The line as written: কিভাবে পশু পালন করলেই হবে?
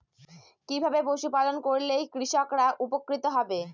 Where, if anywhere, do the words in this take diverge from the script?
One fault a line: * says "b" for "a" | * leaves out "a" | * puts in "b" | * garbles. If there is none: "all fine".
* puts in "কৃষকরা উপকৃত"